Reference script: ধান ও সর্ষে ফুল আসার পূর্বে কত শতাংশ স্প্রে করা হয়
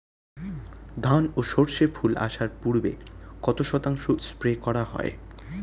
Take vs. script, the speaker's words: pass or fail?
pass